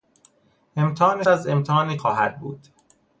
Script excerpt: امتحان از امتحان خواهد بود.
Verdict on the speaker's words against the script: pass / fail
pass